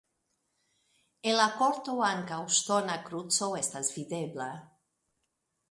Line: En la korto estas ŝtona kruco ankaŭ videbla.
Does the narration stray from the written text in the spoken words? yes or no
yes